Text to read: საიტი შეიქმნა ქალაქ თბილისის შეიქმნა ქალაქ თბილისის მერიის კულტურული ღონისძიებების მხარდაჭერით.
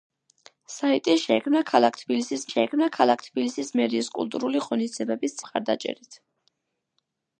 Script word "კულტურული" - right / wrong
right